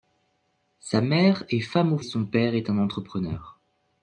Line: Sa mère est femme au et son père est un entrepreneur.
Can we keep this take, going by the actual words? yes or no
yes